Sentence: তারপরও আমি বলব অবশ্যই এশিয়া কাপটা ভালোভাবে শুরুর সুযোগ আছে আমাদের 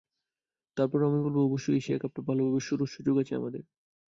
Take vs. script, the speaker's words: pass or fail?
pass